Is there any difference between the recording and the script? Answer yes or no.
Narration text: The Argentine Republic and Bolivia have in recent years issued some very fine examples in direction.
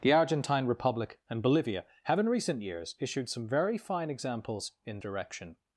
no